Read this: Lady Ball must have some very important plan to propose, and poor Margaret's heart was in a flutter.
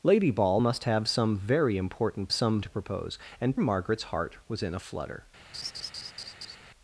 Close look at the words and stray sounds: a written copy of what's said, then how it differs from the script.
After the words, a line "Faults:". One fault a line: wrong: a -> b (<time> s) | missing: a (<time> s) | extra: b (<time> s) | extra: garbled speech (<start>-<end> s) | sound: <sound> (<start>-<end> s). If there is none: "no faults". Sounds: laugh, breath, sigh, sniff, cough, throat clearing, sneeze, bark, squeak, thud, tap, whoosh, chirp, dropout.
Lady Ball must have some very important some to propose, and Margaret's heart was in a flutter.
Faults:
wrong: plan -> some (2.3 s)
missing: poor (3.6 s)
sound: laugh (5.5-6.6 s)